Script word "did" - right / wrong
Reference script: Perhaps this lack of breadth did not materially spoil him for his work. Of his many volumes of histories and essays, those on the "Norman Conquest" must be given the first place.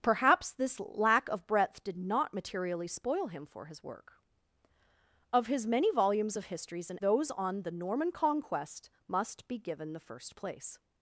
right